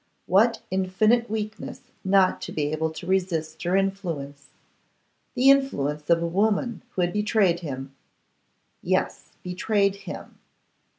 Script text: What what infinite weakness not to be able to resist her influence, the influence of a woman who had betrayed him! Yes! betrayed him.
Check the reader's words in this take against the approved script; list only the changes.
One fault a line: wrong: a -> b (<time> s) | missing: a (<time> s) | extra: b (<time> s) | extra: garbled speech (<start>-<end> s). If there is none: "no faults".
missing: what (0.6 s)